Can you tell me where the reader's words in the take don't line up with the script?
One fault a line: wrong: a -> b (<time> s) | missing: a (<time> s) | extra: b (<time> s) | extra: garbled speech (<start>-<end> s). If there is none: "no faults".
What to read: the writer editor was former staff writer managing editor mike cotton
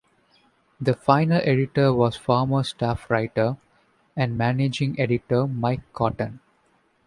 wrong: writer -> final (0.9 s)
extra: and (4.1 s)